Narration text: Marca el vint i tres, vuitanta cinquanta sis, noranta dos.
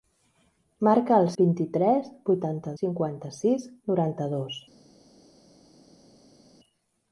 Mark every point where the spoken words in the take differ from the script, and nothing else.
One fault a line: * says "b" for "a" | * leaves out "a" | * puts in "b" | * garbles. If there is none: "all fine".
all fine